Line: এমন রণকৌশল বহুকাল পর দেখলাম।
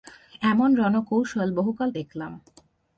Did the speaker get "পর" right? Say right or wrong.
wrong